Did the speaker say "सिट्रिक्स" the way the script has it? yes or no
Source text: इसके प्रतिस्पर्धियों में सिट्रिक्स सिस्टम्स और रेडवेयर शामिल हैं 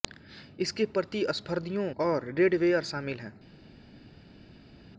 no